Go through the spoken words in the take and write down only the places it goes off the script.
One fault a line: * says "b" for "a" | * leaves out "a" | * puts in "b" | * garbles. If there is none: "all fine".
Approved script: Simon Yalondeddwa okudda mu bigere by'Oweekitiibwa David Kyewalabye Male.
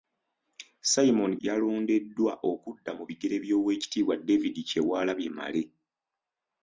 all fine